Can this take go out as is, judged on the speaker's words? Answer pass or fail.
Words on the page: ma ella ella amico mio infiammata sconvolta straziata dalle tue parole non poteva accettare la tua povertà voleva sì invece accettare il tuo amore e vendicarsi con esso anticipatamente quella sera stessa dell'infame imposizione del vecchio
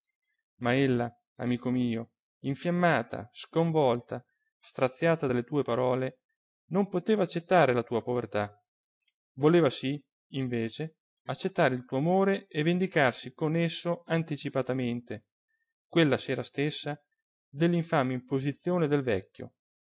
fail